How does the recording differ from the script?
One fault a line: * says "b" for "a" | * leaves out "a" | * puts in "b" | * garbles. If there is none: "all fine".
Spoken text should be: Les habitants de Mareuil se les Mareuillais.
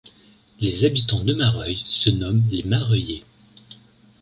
* puts in "nomment"